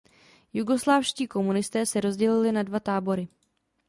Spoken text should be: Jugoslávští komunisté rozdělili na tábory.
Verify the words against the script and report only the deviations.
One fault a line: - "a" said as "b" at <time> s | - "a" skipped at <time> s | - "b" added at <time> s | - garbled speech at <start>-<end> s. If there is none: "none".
- "se" added at 1.9 s
- "dva" added at 2.6 s